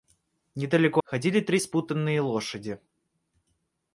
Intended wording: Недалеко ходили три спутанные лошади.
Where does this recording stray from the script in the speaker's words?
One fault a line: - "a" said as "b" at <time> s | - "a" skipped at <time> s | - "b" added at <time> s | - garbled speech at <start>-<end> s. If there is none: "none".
none